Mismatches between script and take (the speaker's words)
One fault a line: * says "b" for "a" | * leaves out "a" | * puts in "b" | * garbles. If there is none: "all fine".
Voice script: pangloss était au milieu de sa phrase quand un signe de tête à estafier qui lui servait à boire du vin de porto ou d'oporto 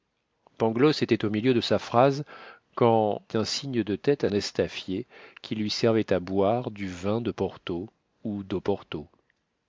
all fine